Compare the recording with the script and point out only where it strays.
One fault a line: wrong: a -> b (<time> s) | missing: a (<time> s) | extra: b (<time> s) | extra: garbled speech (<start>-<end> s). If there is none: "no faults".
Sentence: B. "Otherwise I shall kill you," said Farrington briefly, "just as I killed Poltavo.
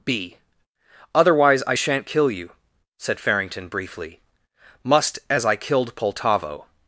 wrong: shall -> shan't (1.7 s)
wrong: just -> must (4.8 s)